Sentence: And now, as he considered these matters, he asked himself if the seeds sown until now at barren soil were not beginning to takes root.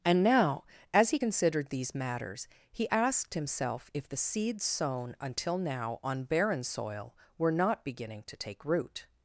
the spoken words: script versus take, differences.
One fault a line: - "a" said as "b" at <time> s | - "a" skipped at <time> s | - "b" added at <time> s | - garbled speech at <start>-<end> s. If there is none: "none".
- "at" said as "on" at 6.0 s
- "takes" said as "take" at 8.4 s